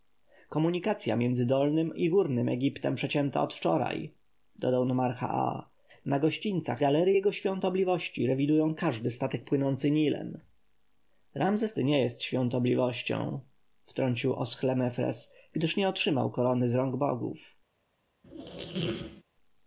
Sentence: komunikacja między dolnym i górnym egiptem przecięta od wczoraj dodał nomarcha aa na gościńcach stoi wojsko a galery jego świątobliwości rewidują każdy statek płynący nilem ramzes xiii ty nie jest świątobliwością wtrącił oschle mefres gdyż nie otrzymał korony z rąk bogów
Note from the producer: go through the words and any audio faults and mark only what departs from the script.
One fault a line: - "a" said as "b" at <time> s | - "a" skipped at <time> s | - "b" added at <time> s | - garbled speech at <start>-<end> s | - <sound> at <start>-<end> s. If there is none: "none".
- "stoi wojsko a" skipped at 6.8 s
- "xiii" skipped at 11.7 s
- squeak at 18.2-19.2 s